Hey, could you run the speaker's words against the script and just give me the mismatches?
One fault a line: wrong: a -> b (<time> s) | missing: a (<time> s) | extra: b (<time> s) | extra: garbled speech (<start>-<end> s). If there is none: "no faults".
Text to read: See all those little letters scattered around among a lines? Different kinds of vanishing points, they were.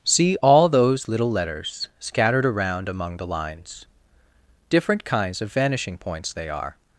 wrong: a -> the (3.2 s)
wrong: were -> are (6.5 s)